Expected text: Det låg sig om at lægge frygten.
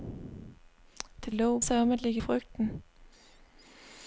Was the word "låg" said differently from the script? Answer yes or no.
no